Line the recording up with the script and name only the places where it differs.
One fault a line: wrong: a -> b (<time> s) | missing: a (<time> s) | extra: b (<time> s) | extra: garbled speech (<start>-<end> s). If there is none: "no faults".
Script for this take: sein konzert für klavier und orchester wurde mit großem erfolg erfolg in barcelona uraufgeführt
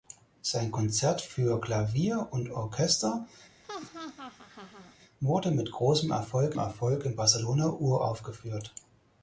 no faults